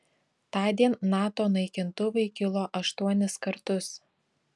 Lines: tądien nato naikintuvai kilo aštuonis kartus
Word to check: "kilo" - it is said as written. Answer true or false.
true